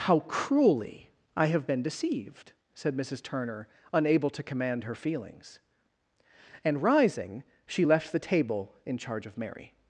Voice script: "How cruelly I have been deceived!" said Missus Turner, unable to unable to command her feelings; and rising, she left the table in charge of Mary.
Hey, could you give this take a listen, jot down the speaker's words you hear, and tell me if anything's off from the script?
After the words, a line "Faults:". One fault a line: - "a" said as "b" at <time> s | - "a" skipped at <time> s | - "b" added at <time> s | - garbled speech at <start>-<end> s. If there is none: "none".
"How cruelly I have been deceived!" said Missus Turner, unable to command her feelings; and rising, she left the table in charge of Mary.
Faults:
- "unable to" skipped at 4.5 s